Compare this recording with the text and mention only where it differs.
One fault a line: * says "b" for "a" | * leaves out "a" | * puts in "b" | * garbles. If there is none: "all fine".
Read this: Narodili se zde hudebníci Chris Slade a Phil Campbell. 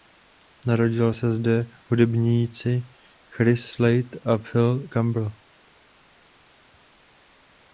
all fine